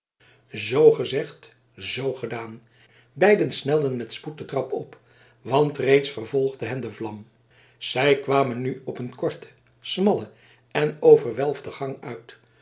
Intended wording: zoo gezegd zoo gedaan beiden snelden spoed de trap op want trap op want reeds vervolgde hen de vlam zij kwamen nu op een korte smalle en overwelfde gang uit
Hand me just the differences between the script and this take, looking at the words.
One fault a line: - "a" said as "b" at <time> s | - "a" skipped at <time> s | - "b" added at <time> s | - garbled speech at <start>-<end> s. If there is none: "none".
- "met" added at 4.0 s
- "trap op want" skipped at 5.8 s